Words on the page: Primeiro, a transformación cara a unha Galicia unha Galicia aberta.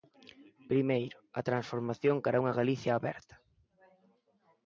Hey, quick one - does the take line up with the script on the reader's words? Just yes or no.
no